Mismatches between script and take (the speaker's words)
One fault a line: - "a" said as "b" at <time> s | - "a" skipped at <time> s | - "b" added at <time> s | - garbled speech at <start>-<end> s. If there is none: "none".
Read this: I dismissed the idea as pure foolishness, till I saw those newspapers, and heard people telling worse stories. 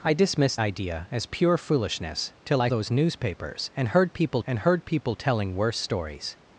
- "the" skipped at 0.6 s
- "saw" skipped at 2.7 s
- "and heard people" added at 4.5 s